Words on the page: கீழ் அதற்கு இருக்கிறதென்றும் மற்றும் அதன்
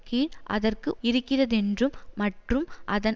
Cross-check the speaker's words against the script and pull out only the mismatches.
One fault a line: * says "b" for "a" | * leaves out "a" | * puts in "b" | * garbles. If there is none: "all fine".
all fine